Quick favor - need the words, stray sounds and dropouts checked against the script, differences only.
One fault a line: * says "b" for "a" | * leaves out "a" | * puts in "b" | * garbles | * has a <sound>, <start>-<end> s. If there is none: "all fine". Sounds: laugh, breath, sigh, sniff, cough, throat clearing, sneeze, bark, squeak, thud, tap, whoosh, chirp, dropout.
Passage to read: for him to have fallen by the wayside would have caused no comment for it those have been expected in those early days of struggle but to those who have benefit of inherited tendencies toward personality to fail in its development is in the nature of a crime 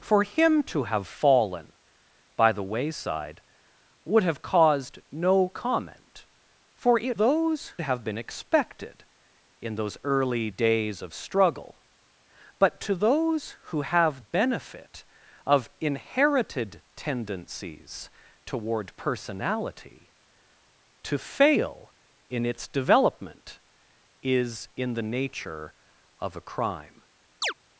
* has a chirp, 27.4-27.5 s